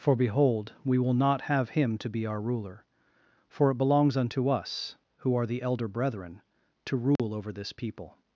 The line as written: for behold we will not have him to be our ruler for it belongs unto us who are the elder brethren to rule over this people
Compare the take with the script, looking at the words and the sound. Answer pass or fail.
fail